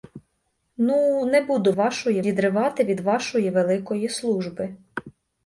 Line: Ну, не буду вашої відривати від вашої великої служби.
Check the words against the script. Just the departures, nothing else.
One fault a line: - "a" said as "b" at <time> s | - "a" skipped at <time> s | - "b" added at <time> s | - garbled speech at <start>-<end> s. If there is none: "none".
none